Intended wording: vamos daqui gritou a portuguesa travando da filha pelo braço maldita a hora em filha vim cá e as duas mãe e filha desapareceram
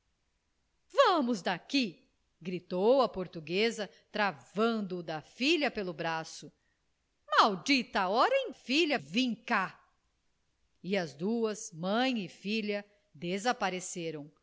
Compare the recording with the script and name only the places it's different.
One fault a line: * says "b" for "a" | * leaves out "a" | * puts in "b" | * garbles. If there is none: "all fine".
all fine